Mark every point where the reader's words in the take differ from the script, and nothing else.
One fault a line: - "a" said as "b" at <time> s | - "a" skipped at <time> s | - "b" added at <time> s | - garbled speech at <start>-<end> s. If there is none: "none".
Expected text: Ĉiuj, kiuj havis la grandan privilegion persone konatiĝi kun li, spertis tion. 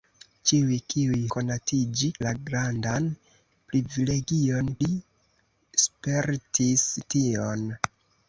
- "havis" said as "konatiĝi" at 1.4 s
- "persone konatiĝi kun" skipped at 4.7 s